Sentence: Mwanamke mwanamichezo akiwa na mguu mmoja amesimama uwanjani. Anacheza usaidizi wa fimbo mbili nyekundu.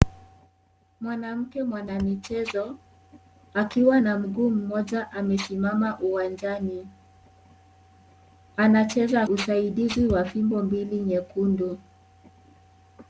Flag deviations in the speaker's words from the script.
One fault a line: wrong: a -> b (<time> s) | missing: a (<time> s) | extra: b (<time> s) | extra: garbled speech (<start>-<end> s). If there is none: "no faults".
no faults